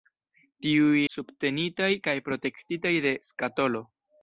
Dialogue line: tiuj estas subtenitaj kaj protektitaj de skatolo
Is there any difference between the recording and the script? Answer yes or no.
yes